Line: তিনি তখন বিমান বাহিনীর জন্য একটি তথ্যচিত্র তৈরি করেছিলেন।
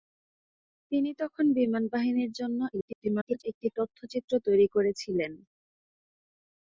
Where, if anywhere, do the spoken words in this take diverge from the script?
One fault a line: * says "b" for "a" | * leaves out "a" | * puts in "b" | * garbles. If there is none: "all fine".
* garbles